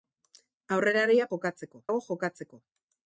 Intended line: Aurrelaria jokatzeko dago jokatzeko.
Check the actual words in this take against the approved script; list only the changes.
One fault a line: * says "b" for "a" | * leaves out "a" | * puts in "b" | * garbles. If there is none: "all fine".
all fine